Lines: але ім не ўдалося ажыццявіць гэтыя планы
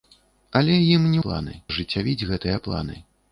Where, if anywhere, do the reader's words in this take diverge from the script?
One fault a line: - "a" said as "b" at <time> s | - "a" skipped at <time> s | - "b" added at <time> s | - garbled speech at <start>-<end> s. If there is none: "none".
- "ўдалося" said as "планы" at 1.3 s